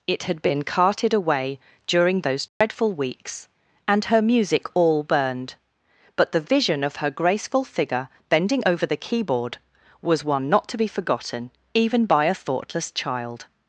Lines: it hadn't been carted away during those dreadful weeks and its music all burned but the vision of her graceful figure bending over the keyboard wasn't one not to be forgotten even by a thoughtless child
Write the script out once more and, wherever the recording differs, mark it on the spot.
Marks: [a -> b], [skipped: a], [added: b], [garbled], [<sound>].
it [hadn't -> had] been carted away during those dreadful [dropout] weeks and [its -> her] music all burned but the vision of her graceful figure bending over the keyboard [wasn't -> was] one not to be forgotten even by a thoughtless child